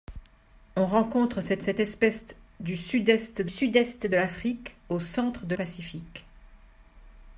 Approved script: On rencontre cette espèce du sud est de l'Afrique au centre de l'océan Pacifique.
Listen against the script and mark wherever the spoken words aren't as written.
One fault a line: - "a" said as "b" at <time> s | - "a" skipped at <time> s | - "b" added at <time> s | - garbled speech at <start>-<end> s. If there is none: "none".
- "cette" added at 1.6 s
- "sud est de" added at 3.4 s
- "l'océan" skipped at 5.5 s